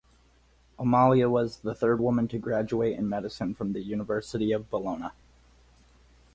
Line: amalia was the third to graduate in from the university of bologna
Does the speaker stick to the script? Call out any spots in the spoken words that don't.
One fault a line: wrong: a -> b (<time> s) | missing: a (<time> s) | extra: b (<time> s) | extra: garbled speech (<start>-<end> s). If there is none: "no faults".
extra: woman (2.0 s)
extra: medicine (3.1 s)